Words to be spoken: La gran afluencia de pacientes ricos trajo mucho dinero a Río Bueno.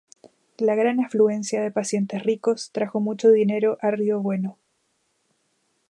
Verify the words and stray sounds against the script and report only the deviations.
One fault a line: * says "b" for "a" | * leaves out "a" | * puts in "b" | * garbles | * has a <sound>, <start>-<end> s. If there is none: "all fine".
all fine